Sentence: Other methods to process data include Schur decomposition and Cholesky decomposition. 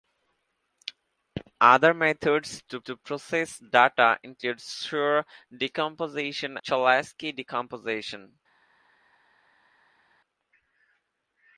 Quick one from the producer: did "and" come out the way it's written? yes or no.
no